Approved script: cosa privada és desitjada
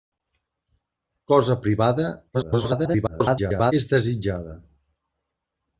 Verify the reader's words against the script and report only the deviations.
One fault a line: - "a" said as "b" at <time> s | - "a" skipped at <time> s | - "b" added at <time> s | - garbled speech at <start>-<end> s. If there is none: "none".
- garbled speech at 2.3-3.7 s